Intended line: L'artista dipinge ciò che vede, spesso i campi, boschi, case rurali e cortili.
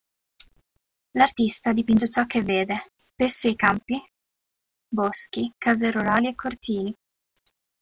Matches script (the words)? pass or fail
pass